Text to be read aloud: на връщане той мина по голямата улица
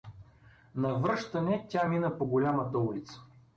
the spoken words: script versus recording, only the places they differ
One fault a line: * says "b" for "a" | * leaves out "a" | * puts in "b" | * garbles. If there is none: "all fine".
* says "тя" for "той"